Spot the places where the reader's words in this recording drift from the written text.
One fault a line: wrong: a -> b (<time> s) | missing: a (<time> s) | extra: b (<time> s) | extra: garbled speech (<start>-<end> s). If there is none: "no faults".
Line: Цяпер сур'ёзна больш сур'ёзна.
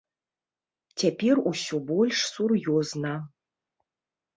wrong: сур'ёзна -> усё (1.5 s)